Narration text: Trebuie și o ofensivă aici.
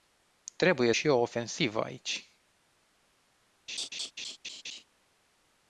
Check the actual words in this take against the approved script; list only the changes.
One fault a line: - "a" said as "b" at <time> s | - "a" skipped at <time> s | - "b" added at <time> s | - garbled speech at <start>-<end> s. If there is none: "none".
none